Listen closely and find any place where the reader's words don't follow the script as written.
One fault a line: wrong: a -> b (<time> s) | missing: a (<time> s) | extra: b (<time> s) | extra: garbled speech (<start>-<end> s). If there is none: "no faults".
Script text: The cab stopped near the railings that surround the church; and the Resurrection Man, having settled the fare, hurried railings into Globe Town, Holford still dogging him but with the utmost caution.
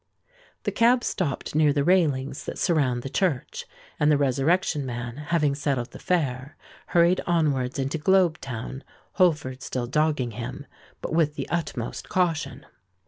wrong: railings -> onwards (7.3 s)